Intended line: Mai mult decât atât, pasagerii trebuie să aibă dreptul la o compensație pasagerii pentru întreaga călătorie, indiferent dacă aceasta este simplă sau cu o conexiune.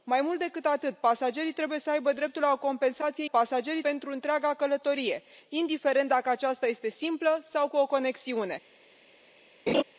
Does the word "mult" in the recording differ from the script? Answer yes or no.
no